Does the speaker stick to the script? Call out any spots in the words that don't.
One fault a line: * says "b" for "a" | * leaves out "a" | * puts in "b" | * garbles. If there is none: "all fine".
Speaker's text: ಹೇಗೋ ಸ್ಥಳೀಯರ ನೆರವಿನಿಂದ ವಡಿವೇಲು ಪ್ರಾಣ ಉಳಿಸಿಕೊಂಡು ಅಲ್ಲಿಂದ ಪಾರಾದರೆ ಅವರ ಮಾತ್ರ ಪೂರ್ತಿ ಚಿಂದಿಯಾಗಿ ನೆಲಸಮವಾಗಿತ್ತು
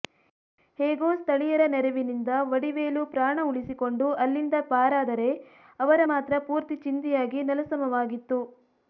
all fine